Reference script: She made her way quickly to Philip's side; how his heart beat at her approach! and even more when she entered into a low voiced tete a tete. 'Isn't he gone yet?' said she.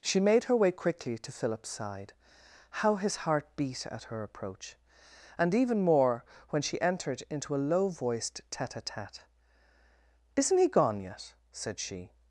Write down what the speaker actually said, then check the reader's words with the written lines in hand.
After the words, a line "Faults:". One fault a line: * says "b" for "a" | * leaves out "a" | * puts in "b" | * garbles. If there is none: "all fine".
She made her way quickly to Philip's side; how his heart beat at her approach! and even more when she entered into a low voiced tete a tete. 'Isn't he gone yet?' said she.
Faults:
all fine